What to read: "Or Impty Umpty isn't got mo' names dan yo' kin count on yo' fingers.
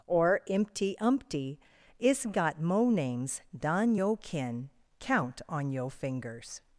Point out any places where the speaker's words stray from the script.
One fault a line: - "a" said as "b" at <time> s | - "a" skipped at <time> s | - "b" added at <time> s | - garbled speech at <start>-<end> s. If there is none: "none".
- "isn't" said as "is" at 2.0 s